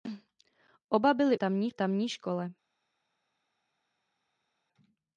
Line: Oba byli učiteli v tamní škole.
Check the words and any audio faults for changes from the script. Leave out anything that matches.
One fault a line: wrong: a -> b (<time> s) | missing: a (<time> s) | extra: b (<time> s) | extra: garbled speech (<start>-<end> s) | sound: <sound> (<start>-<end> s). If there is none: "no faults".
wrong: učiteli -> tamní (1.3 s)